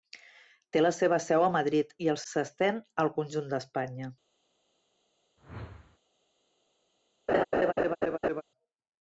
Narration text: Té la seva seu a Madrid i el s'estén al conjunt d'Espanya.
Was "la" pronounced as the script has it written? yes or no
yes